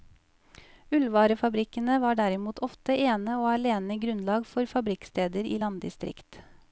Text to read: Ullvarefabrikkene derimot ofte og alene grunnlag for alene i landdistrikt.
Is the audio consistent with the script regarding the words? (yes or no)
no